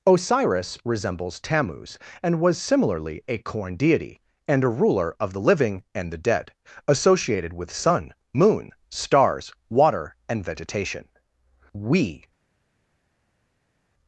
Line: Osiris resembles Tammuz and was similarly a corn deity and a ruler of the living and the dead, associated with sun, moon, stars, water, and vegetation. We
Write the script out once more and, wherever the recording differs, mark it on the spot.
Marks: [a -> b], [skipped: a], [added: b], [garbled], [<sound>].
Osiris resembles Tammuz and was similarly a corn deity and a ruler of the living and the dead, associated with sun, moon, stars, water, and vegetation. We